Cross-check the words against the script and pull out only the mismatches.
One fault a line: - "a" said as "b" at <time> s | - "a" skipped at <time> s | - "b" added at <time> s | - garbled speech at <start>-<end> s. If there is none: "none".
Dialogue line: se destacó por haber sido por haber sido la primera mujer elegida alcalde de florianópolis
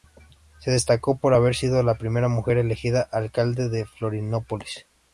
- "por haber sido" skipped at 1.8 s